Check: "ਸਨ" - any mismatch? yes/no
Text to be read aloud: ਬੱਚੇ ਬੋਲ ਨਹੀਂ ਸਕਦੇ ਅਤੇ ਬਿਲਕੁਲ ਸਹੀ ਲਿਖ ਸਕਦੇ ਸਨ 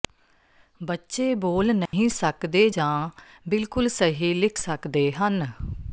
yes